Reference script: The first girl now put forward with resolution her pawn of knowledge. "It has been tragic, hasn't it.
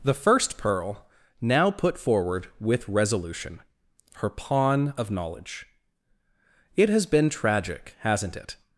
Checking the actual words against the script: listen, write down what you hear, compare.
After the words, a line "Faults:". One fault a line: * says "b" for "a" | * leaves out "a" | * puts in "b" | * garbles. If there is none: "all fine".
The first pearl now put forward with resolution her pawn of knowledge. "It has been tragic, hasn't it.
Faults:
* says "pearl" for "girl"